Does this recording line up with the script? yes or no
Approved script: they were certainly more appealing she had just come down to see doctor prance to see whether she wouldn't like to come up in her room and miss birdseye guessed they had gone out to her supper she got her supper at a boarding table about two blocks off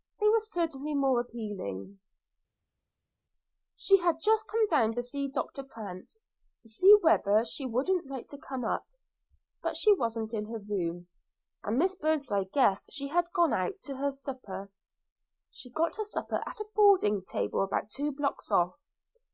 no